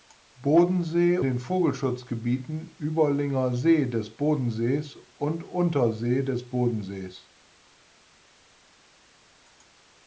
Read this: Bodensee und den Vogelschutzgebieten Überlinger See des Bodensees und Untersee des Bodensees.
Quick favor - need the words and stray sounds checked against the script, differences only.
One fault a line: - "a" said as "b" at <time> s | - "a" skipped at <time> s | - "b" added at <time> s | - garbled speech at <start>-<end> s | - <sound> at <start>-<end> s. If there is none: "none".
- "und" skipped at 1.2 s